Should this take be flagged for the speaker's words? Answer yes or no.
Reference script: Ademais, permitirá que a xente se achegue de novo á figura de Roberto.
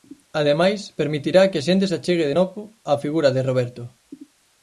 no